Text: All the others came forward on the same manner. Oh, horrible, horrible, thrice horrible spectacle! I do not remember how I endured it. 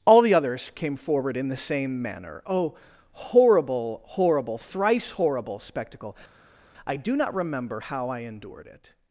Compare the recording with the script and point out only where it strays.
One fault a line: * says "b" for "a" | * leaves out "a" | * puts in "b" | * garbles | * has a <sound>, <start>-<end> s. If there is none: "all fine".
* says "in" for "on"